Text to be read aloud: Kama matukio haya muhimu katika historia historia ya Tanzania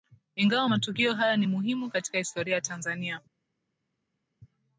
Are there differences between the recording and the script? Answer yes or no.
yes